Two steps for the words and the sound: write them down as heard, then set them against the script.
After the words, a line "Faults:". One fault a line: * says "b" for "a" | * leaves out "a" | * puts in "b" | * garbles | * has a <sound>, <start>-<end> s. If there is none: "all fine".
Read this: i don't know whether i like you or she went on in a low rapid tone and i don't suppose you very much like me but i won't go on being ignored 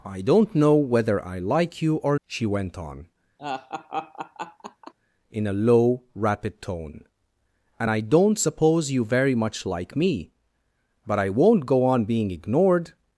i don't know whether i like you or she went on in a low rapid tone and i don't suppose you very much like me but i won't go on being ignored
Faults:
* has a laugh, 3.4-4.9 s